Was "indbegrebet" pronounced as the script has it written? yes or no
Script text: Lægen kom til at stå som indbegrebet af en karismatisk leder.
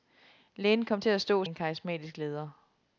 no